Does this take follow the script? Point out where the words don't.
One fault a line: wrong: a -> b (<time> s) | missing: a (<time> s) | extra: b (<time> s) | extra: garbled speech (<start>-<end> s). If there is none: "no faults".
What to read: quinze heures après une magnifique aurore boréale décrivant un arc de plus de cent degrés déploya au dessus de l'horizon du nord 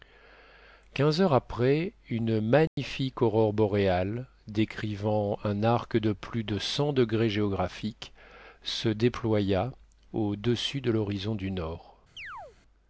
extra: géographiques se (7.3 s)